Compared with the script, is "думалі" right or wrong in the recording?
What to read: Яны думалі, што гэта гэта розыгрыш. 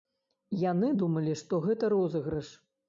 right